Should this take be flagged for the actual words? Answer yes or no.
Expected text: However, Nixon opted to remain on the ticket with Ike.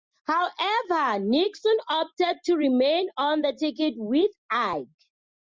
no